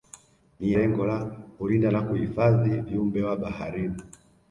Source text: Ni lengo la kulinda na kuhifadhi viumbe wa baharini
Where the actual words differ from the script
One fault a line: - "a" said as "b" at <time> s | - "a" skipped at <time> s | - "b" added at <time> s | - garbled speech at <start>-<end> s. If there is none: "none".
none